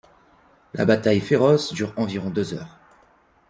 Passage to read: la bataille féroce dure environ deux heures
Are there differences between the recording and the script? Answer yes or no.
no